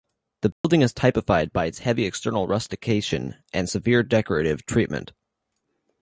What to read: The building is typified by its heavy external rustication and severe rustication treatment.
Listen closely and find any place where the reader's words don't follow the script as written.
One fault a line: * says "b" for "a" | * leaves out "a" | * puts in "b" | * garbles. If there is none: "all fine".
* says "decorative" for "rustication"